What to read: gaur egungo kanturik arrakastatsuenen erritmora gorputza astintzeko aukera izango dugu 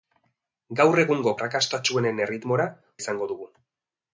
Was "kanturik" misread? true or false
true